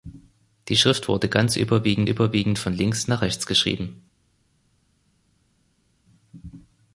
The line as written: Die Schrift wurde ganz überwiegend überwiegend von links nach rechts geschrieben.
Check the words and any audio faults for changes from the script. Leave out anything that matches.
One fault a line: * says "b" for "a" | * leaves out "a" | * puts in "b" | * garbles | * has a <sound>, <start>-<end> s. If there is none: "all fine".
all fine